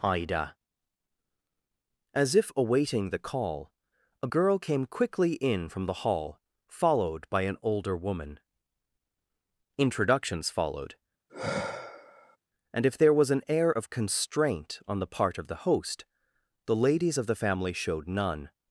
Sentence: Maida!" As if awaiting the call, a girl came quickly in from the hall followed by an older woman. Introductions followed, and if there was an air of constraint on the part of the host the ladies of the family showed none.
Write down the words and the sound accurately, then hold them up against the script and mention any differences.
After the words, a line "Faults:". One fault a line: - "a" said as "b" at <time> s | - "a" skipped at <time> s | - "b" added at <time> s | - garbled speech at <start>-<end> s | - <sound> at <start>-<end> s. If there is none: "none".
Ida!" As if awaiting the call, a girl came quickly in from the hall followed by an older woman. Introductions followed, and if there was an air of constraint on the part of the host the ladies of the family showed none.
Faults:
- "Maida" said as "Ida" at 0.0 s
- sigh at 11.3-12.4 s